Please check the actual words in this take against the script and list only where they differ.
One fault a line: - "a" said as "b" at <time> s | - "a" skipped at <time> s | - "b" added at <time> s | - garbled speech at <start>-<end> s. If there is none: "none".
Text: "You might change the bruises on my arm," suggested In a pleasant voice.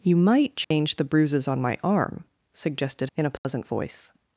none